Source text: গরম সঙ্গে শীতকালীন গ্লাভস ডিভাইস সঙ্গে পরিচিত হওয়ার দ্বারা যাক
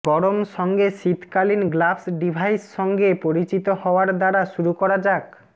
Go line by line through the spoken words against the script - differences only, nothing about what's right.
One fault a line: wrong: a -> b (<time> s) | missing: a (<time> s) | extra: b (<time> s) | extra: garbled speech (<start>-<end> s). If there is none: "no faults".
extra: শুরু করা (4.5 s)